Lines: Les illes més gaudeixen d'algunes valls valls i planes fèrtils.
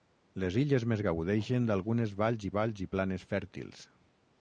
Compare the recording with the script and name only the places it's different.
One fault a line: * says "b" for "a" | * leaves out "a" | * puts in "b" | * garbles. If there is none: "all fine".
all fine